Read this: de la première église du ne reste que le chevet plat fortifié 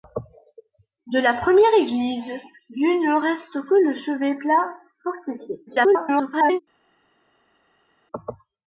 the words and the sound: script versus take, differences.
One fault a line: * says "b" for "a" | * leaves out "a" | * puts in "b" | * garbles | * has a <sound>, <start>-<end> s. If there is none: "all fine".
* garbles